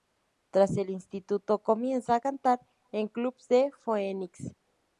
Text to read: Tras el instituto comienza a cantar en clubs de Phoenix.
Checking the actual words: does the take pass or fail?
pass